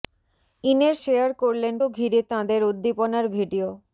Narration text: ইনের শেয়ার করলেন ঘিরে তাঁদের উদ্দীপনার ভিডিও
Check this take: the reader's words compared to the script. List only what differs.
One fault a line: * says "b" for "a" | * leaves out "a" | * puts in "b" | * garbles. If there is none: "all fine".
all fine